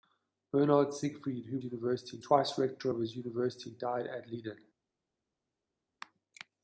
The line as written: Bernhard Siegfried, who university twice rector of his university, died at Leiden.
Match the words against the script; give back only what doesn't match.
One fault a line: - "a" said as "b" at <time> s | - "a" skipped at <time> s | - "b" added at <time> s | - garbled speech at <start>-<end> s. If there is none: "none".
none